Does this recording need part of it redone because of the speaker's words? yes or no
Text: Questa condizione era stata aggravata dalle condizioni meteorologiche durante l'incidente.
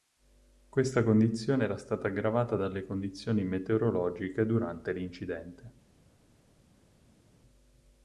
no